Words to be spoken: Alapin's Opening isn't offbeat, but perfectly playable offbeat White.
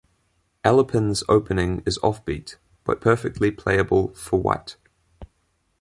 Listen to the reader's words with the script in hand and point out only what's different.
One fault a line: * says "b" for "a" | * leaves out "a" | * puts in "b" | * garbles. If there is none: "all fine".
* says "is" for "isn't"
* says "for" for "offbeat"